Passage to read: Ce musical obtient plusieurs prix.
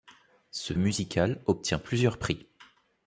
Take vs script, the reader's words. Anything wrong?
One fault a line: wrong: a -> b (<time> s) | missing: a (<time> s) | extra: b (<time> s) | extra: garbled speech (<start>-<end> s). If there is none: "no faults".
no faults